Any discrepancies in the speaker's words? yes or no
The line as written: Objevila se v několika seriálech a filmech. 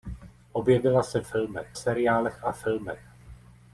yes